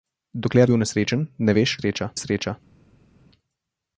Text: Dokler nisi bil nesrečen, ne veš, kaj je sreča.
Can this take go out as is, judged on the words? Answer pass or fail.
fail